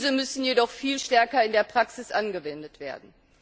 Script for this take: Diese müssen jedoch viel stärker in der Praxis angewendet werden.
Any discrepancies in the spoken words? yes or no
no